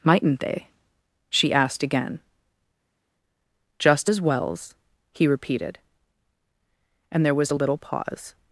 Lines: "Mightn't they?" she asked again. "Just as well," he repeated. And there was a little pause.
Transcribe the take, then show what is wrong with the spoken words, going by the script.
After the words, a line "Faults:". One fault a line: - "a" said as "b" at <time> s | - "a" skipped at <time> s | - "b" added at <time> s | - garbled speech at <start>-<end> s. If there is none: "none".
"Mightn't they?" she asked again. "Just as wells," he repeated. And there was a little pause.
Faults:
- "well" said as "wells" at 4.2 s